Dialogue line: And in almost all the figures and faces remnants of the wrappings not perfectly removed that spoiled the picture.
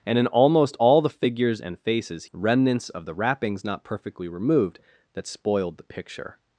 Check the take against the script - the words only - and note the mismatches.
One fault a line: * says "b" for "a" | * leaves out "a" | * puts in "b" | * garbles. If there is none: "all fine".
all fine